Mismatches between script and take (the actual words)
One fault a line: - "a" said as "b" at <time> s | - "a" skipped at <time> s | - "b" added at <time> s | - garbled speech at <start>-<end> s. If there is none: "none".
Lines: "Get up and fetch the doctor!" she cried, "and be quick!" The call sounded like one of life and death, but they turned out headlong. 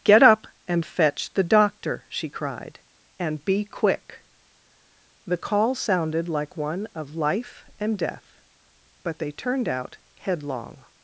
none